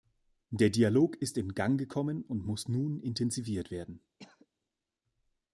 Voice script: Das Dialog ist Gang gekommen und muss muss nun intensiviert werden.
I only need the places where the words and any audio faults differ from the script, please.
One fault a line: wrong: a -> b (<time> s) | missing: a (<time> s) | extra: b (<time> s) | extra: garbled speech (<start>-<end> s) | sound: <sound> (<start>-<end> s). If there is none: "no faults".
wrong: Das -> Der (0.5 s)
extra: in (1.4 s)
missing: muss (2.7 s)
sound: cough (4.2-4.5 s)